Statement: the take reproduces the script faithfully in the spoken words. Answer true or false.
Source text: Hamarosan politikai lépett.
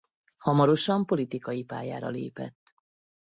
false